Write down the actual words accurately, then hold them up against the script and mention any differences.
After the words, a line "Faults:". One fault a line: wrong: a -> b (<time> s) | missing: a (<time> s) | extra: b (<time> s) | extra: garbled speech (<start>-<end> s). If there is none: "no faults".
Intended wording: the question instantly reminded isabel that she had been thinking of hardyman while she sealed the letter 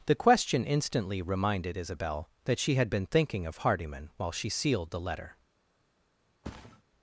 the question instantly reminded isabel that she had been thinking of hardyman while she sealed the letter
Faults:
no faults